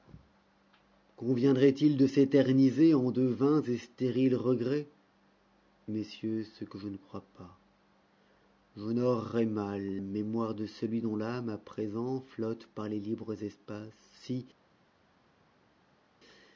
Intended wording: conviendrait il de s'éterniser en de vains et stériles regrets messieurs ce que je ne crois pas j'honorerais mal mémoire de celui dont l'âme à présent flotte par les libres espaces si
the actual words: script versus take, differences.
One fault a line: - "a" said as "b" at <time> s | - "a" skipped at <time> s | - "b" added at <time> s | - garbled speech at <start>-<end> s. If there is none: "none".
none